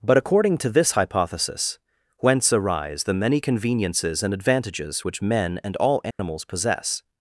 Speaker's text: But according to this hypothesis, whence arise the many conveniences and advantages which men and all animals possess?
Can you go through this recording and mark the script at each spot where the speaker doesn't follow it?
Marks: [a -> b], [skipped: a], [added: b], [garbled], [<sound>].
But according to this hypothesis, whence arise the many conveniences and advantages which men and all animals [dropout] possess?